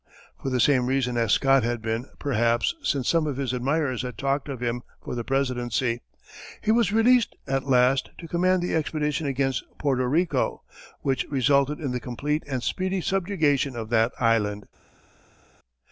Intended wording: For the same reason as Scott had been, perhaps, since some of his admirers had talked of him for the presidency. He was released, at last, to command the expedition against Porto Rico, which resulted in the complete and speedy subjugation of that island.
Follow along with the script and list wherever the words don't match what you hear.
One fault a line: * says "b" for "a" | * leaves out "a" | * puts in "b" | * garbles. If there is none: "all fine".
all fine